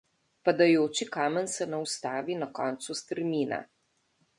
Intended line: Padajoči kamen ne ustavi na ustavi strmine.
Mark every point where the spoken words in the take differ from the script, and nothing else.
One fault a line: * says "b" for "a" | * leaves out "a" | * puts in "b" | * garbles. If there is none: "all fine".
* puts in "se"
* says "koncu" for "ustavi"